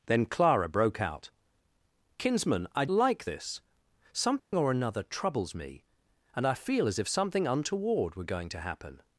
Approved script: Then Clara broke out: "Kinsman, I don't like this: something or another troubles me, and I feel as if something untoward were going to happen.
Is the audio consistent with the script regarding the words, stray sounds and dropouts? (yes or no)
no